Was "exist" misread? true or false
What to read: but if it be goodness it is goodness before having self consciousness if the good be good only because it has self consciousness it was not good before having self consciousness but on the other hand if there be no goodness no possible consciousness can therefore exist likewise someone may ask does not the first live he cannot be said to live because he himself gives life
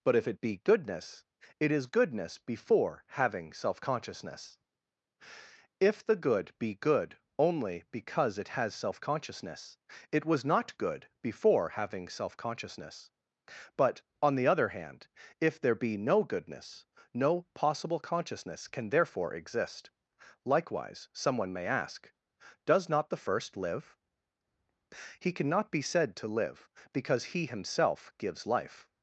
false